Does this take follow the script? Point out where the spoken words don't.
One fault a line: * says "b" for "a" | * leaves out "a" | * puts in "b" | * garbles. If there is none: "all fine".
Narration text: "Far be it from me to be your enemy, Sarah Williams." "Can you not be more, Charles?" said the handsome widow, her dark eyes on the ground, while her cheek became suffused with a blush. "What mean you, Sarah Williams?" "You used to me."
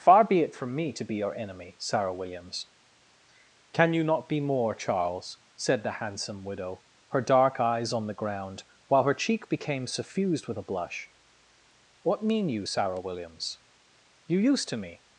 all fine